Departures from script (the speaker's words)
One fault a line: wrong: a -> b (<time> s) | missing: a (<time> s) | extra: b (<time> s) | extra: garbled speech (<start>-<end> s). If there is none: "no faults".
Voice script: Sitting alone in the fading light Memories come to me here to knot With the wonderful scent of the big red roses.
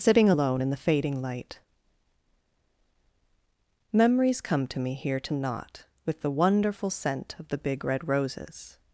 no faults